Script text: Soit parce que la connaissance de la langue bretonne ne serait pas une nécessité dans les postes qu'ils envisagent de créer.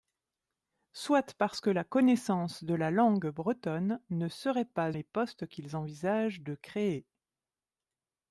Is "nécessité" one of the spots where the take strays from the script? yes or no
yes